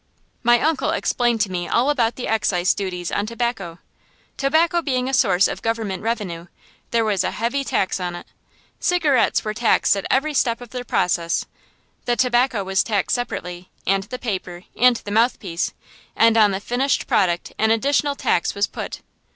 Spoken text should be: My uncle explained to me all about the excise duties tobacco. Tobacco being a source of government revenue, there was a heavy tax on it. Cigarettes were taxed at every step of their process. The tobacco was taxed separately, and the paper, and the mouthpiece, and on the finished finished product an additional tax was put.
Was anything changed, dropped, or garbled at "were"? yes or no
no